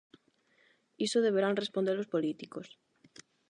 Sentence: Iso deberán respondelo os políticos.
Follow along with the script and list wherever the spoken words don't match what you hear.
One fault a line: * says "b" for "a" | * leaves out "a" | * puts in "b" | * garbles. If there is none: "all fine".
all fine